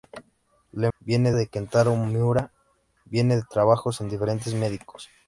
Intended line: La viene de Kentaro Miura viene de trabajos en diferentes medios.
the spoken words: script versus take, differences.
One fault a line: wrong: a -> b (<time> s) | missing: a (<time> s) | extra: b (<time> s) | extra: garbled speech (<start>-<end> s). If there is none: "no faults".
no faults